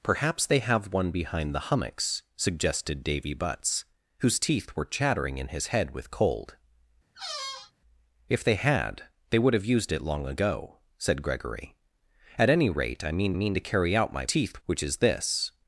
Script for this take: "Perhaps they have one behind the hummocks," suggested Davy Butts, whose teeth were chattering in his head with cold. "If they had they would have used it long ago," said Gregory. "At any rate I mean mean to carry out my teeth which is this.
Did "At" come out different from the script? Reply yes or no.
no